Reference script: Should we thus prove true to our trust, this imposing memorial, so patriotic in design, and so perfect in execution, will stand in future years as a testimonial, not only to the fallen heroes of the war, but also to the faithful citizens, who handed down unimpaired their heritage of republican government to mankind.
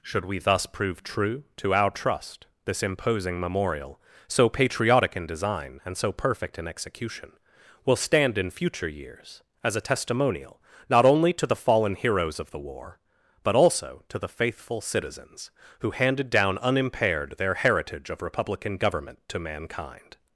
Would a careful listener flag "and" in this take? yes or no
no